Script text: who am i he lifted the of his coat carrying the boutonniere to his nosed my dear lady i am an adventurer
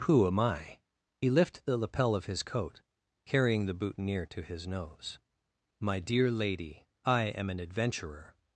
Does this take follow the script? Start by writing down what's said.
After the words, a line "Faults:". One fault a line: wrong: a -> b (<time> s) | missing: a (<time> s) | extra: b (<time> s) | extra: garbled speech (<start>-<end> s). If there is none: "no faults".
who am i he lifted the lapel of his coat carrying the boutonniere to his nose my dear lady i am an adventurer
Faults:
extra: lapel (1.8 s)
wrong: nosed -> nose (4.7 s)